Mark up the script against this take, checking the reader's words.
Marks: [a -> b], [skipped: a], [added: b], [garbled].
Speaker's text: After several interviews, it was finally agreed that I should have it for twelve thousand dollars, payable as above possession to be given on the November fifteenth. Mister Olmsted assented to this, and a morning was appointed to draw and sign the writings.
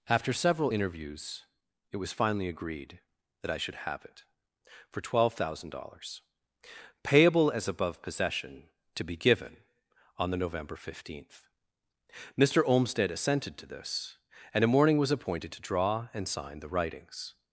After several interviews, it was finally agreed that I should have it for twelve thousand dollars, payable as above possession to be given on the November fifteenth. Mister Olmsted assented to this, and a morning was appointed to draw and sign the writings.